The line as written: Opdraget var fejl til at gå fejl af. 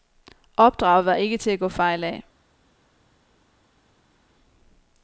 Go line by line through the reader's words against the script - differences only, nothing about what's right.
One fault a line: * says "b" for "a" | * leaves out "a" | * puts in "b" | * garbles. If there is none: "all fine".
* says "ikke" for "fejl"